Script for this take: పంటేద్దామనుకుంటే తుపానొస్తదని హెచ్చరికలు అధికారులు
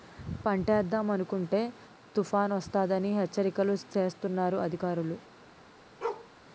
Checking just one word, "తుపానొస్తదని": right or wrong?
right